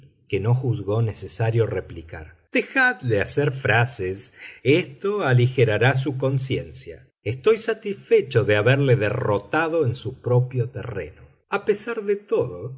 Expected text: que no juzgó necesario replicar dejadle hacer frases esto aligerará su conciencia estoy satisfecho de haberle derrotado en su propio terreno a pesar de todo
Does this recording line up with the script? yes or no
yes